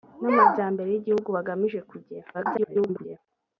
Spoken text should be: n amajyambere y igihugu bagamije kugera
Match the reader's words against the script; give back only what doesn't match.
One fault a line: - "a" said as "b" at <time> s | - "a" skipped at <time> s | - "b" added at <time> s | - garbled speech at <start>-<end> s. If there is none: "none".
- garbled speech at 2.3-3.2 s